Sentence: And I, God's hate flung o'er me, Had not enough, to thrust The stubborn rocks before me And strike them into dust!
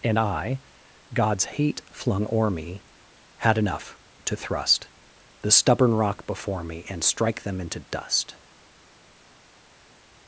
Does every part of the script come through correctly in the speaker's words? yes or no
no